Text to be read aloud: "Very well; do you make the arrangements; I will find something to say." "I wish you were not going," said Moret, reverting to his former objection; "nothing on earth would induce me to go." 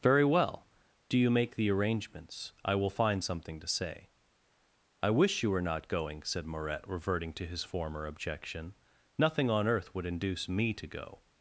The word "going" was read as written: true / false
true